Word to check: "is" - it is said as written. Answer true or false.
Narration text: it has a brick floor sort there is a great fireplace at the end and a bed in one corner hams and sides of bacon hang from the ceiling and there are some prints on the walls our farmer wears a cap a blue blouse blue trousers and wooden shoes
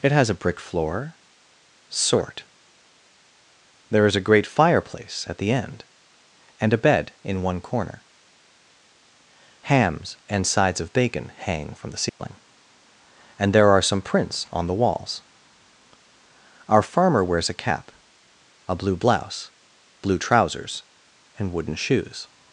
true